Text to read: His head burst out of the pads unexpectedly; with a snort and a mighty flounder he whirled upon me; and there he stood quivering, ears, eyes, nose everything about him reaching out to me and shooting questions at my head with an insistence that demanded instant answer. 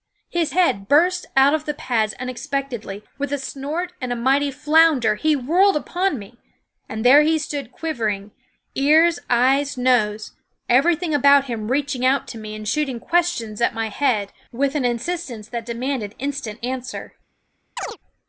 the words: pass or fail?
pass